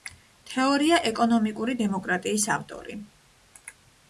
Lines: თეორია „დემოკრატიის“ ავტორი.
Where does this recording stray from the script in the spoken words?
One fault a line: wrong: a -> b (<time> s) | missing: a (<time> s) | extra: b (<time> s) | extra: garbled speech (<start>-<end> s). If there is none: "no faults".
extra: ეკონომიკური (1.1 s)